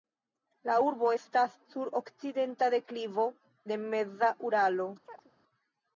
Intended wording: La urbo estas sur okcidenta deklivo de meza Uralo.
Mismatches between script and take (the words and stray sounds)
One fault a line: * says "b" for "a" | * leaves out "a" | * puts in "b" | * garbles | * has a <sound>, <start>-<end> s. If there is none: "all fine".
* has a chirp, 5.0-5.3 s